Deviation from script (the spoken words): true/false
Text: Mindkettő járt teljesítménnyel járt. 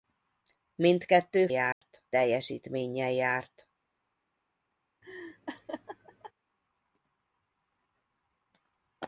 false